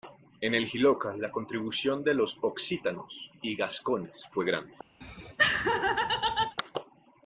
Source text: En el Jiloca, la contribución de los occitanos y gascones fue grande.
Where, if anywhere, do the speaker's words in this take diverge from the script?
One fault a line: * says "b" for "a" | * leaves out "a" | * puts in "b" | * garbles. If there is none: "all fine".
all fine